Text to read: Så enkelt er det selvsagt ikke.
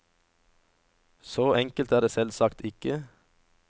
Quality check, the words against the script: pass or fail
pass